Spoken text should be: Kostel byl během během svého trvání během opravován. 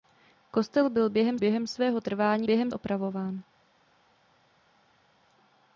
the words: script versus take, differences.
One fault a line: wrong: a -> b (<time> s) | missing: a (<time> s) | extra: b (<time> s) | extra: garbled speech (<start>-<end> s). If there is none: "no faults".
no faults